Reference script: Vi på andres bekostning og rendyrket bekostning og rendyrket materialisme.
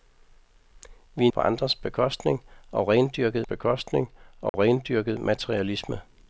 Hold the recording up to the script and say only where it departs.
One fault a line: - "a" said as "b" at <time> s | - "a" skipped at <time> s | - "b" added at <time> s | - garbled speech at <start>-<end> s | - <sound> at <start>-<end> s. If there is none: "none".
- dropout at 4.5-4.5 s